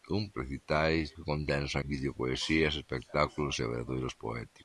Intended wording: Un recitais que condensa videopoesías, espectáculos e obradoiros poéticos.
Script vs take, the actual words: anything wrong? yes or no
no